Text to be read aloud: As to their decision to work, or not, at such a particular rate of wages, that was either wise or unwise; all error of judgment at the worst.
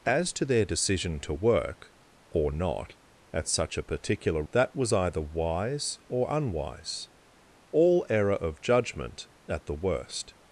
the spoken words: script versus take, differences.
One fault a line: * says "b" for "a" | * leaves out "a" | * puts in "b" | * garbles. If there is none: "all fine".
* leaves out "rate of wages"